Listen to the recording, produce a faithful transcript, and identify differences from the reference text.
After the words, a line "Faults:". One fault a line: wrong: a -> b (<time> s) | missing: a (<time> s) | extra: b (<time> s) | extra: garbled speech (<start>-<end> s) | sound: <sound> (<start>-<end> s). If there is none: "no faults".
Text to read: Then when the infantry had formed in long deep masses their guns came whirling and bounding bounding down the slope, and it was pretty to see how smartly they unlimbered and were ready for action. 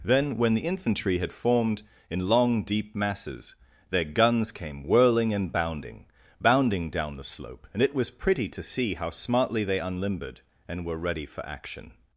Then when the infantry had formed in long deep masses their guns came whirling and bounding bounding down the slope, and it was pretty to see how smartly they unlimbered and were ready for action.
Faults:
no faults